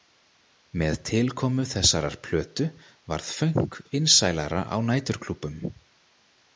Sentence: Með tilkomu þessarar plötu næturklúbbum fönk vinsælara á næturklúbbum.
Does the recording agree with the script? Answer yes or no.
no